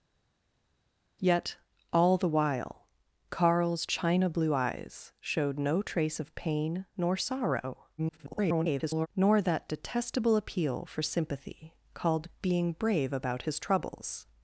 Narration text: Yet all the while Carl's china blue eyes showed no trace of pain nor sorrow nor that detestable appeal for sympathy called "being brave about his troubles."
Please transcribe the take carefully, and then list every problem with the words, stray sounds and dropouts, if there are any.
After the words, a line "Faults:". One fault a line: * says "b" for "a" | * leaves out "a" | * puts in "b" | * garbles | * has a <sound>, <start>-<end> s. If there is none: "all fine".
Yet all the while Carl's china blue eyes showed no trace of pain nor sorrow [garbled] nor that detestable appeal for sympathy called "being brave about his troubles."
Faults:
* garbles